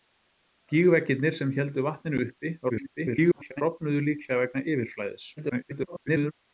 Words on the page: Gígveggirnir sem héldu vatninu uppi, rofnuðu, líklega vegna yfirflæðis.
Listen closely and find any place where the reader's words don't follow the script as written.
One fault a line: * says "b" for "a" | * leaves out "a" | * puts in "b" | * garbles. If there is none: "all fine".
* garbles
* garbles